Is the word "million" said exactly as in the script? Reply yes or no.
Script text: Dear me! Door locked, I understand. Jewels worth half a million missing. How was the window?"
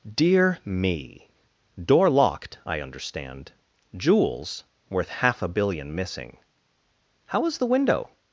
no